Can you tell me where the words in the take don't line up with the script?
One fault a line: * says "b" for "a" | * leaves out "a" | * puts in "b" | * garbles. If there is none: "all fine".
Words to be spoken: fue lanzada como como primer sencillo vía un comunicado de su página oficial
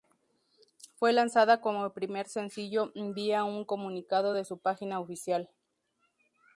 * leaves out "como"